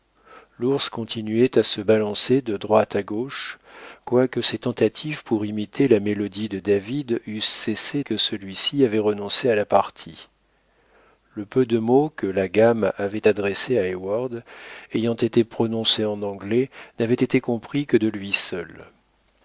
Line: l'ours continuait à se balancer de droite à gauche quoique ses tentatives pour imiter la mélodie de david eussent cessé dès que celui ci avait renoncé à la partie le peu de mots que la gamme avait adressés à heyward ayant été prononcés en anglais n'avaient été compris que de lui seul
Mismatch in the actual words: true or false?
true